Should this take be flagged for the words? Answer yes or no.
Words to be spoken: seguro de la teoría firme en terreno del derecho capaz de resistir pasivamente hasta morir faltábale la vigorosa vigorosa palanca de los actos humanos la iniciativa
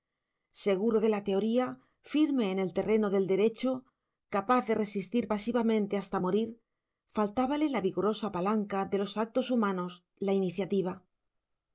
yes